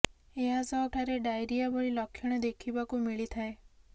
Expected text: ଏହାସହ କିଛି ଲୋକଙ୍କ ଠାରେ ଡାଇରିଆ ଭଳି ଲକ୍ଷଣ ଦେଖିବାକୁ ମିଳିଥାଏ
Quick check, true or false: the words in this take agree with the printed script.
false